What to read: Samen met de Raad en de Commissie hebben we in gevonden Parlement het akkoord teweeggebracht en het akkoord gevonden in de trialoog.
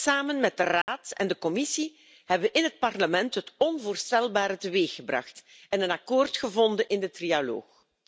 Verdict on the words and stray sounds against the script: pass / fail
fail